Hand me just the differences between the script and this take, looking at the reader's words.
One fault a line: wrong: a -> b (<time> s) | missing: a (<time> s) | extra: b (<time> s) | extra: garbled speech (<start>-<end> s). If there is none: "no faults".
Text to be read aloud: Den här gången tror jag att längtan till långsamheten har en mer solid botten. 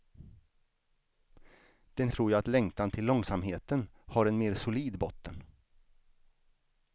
missing: här gången (2.1 s)